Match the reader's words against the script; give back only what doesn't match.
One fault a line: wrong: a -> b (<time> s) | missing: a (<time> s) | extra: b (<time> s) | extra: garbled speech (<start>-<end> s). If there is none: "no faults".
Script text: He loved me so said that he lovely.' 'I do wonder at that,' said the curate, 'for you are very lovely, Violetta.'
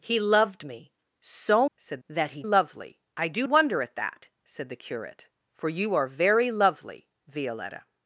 no faults